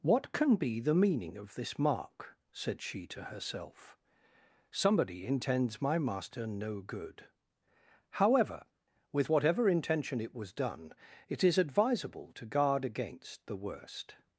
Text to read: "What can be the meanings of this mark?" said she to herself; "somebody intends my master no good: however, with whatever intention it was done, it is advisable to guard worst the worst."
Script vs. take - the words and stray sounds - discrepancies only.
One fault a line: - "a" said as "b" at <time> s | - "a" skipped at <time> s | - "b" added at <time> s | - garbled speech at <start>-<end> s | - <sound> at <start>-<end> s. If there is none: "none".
- "meanings" said as "meaning" at 0.9 s
- "worst" said as "against" at 12.9 s